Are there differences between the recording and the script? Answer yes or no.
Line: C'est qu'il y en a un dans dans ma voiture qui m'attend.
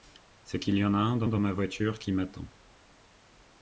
no